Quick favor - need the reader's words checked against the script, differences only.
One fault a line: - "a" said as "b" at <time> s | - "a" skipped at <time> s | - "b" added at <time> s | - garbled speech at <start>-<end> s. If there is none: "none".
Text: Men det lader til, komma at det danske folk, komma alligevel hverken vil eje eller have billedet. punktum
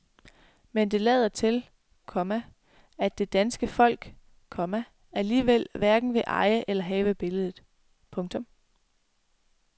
none